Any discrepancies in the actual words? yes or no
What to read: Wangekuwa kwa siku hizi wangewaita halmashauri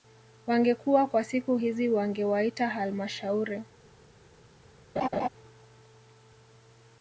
no